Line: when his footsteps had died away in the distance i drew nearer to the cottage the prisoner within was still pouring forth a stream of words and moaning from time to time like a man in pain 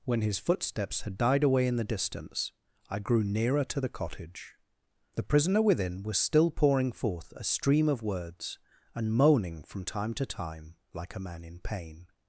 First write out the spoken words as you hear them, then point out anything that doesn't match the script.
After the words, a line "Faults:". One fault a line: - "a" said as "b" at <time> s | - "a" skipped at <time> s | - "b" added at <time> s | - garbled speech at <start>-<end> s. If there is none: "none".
when his footsteps had died away in the distance i grew nearer to the cottage the prisoner within was still pouring forth a stream of words and moaning from time to time like a man in pain
Faults:
- "drew" said as "grew" at 3.0 s